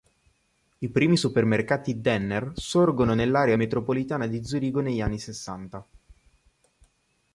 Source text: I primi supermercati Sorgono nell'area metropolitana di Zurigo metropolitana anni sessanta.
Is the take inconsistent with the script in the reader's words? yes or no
yes